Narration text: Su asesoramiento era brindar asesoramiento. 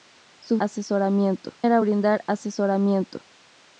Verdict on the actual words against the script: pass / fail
pass